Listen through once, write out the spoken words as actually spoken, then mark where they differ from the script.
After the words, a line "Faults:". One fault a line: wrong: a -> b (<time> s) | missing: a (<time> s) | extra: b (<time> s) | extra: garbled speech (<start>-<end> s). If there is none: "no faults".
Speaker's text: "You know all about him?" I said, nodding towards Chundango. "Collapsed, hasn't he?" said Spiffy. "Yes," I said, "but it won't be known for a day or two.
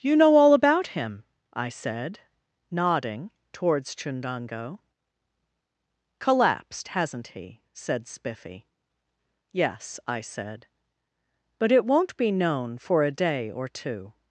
"You know all about him?" I said, nodding towards Chundango. "Collapsed, hasn't he?" said Spiffy. "Yes," I said, "but it won't be known for a day or two.
Faults:
no faults